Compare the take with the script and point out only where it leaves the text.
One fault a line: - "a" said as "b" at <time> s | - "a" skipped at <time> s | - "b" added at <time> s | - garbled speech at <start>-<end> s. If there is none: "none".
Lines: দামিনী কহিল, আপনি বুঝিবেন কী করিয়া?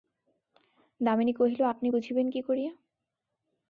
none